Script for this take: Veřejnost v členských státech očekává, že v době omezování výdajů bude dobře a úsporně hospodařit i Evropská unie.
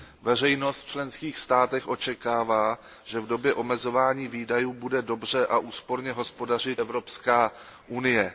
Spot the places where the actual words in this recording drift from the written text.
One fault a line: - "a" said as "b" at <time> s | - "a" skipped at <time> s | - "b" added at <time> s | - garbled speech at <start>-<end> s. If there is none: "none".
- "i" skipped at 6.8 s